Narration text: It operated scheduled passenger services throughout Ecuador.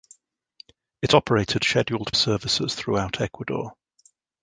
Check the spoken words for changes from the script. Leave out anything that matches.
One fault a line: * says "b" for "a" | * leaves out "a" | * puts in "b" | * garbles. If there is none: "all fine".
* leaves out "passenger"